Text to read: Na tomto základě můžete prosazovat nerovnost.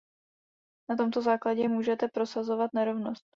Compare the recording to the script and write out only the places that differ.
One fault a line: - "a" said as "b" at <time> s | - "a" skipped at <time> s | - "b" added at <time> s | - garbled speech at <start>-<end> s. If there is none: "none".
none